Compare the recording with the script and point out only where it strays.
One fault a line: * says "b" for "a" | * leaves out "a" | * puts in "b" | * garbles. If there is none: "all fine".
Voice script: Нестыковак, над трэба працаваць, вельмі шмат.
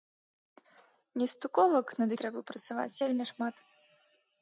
all fine